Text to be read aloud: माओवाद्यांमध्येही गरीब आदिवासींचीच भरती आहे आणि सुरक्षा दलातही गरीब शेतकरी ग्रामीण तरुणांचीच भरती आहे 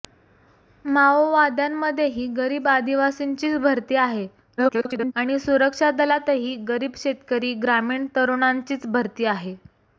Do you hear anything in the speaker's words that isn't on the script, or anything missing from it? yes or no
yes